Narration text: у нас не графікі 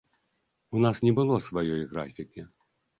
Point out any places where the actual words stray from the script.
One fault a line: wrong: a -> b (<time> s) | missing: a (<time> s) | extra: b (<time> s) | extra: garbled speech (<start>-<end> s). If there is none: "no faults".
extra: было сваёй (1.2 s)